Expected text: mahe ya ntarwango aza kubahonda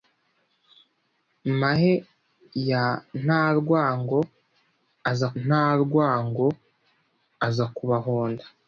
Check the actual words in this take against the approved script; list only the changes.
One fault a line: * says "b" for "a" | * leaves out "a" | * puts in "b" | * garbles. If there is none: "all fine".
* puts in "ntarwango aza"